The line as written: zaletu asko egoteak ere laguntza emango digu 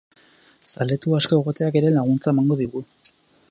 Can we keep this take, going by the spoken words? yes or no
yes